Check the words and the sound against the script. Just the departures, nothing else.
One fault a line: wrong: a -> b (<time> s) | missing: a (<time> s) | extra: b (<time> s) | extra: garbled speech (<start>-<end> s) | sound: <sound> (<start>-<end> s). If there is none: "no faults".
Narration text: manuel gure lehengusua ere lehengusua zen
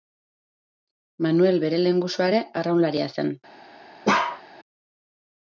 wrong: gure -> bere (1.7 s)
wrong: lehengusua -> arraunlaria (2.6 s)
sound: bark (4.0-4.4 s)